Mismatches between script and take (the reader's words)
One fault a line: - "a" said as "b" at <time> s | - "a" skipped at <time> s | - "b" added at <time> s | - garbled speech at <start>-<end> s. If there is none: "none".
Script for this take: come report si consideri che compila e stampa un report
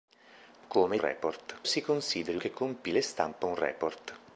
none